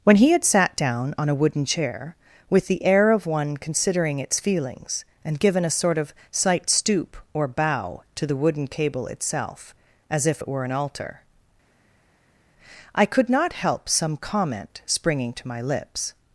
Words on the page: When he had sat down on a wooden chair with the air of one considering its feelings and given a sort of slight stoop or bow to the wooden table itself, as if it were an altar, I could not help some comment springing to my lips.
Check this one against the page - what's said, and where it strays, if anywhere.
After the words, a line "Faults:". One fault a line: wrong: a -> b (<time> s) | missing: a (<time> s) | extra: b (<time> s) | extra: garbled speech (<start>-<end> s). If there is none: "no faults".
When he had sat down on a wooden chair with the air of one considering its feelings and given a sort of slight stoop or bow to the wooden cable itself, as if it were an altar, I could not help some comment springing to my lips.
Faults:
wrong: table -> cable (8.7 s)